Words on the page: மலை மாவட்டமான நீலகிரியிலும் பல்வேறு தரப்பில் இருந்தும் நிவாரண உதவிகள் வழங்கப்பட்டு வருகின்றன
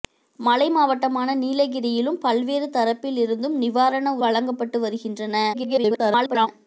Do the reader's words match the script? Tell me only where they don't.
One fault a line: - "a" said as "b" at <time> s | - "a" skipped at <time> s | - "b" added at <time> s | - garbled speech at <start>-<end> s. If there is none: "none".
- "உதவிகள்" skipped at 4.2 s
- garbled speech at 5.5-6.5 s